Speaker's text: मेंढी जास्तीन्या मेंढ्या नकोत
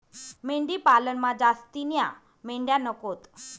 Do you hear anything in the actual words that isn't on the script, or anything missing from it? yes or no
yes